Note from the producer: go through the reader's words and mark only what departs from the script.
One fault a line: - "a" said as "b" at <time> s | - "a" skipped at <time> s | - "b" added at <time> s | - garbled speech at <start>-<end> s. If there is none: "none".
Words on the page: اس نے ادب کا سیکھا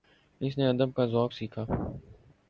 - "ذوق" added at 1.1 s